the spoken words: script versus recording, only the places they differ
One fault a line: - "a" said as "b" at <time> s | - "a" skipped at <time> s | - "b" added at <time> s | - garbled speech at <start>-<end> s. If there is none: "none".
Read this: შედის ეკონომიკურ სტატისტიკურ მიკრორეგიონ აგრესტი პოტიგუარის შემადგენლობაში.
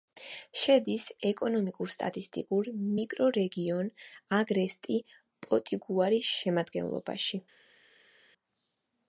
none